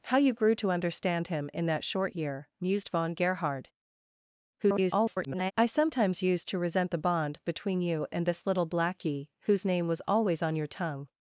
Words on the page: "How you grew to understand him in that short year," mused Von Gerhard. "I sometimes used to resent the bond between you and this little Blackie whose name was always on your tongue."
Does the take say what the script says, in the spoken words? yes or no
no